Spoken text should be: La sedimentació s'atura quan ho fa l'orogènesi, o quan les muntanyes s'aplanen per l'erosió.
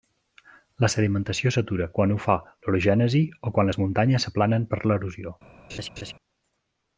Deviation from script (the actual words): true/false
false